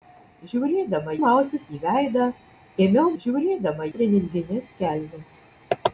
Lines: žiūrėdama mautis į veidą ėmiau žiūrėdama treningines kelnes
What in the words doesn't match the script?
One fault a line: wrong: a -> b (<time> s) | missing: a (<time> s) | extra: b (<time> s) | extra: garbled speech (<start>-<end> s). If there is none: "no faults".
no faults